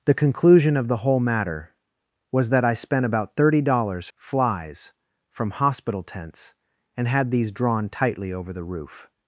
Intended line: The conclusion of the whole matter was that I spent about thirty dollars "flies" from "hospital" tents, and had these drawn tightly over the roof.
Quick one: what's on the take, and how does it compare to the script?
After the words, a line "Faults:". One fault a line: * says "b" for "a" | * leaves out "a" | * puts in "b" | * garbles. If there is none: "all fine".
The conclusion of the whole matter was that I spent about thirty dollars "flies" from "hospital" tents, and had these drawn tightly over the roof.
Faults:
all fine